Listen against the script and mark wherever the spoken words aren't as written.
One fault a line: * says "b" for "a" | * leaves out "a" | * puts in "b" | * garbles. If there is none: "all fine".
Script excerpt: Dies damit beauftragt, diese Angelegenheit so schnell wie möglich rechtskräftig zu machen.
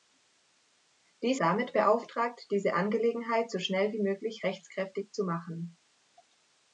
all fine